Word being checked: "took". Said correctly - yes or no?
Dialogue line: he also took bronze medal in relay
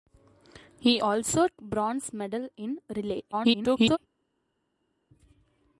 no